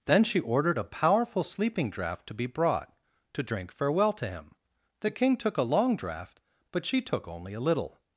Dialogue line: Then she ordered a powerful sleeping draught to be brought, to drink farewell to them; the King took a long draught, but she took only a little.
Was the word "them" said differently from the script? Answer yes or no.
yes